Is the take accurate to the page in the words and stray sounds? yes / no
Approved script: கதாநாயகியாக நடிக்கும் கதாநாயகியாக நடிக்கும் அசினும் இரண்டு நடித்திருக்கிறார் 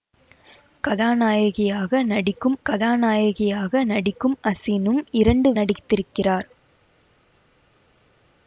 yes